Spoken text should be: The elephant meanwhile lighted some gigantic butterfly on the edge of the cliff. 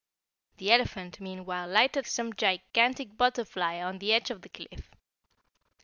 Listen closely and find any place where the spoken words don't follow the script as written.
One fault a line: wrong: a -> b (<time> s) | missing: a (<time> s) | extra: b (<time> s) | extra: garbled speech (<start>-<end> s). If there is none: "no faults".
no faults